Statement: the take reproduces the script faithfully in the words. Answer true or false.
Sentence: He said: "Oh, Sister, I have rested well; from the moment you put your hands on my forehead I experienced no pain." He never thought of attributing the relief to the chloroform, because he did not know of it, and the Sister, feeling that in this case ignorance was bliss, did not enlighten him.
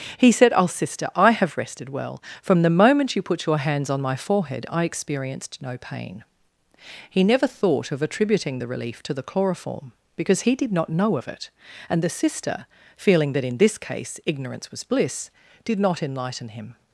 true